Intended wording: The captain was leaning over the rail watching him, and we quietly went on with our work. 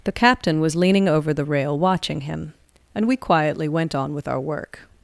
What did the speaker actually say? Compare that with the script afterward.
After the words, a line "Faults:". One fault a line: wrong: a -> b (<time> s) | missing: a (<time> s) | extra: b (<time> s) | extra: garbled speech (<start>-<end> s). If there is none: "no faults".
The captain was leaning over the rail watching him, and we quietly went on with our work.
Faults:
no faults